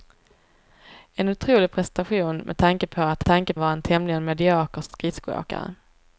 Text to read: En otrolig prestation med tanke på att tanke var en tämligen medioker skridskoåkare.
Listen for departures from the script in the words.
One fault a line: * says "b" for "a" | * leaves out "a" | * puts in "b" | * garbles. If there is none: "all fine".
all fine